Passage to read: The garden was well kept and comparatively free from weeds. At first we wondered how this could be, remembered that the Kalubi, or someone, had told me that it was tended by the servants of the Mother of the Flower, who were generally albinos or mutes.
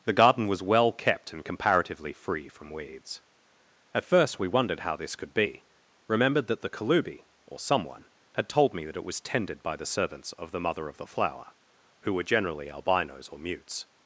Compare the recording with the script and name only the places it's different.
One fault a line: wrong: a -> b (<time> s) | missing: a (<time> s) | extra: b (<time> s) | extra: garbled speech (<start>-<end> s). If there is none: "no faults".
no faults